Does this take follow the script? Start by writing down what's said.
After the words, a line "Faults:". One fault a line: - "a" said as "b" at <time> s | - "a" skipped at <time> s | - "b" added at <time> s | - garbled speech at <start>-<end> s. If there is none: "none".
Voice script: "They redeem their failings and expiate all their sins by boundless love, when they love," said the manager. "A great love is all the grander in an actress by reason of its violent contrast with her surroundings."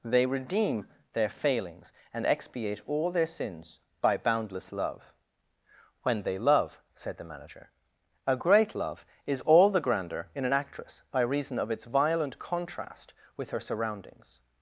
"They redeem their failings and expiate all their sins by boundless love, when they love," said the manager. "A great love is all the grander in an actress by reason of its violent contrast with her surroundings."
Faults:
none